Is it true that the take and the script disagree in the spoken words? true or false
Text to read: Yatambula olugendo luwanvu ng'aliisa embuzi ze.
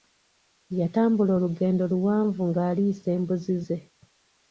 false